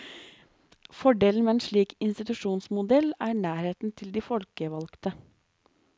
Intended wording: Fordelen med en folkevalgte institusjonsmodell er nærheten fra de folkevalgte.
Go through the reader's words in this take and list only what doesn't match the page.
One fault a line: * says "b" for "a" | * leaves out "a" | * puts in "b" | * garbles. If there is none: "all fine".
* says "slik" for "folkevalgte"
* says "til" for "fra"